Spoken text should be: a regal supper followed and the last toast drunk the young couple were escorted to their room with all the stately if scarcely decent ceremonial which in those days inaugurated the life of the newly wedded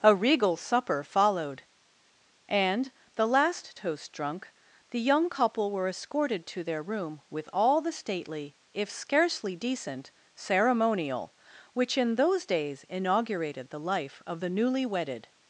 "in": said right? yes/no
yes